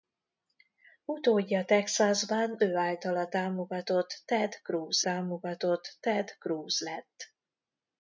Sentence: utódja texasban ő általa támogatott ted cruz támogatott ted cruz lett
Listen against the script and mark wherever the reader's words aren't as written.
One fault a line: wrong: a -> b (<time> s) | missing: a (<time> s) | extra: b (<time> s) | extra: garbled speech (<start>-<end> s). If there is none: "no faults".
no faults